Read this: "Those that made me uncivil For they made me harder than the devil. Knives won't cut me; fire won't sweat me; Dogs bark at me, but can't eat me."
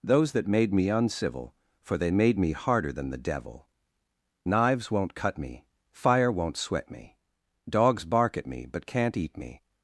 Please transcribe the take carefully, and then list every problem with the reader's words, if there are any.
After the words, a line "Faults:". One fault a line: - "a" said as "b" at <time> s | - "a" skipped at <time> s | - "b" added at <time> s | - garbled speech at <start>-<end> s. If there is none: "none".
"Those that made me uncivil For they made me harder than the devil. Knives won't cut me; fire won't sweat me; Dogs bark at me, but can't eat me."
Faults:
none